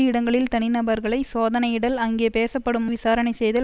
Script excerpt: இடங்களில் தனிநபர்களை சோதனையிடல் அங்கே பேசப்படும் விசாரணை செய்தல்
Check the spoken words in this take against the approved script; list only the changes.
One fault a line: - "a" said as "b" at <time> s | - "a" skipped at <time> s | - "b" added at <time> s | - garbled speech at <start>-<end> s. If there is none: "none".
none